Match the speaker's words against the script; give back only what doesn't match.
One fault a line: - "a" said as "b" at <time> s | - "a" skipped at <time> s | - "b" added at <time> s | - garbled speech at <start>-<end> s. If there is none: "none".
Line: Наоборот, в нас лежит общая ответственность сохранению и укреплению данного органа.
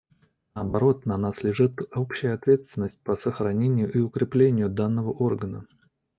- "в" said as "на" at 1.0 s
- "по" added at 3.0 s